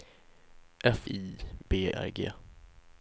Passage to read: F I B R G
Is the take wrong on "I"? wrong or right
right